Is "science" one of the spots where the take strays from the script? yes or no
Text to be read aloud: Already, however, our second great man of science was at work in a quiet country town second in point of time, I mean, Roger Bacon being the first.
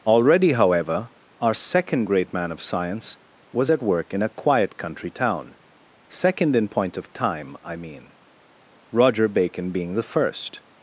no